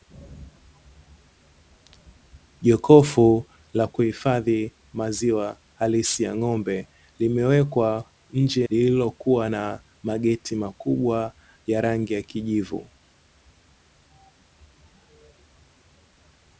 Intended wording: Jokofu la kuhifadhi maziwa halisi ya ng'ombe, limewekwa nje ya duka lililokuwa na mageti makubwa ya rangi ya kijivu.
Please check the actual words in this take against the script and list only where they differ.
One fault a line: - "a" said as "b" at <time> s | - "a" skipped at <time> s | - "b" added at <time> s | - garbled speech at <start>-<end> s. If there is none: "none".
- "ya duka" skipped at 8.6 s